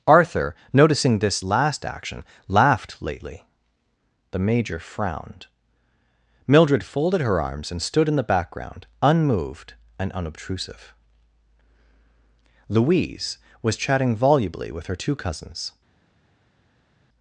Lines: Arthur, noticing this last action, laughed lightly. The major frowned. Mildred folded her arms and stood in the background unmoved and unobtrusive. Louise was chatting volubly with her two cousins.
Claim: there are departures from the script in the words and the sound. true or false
true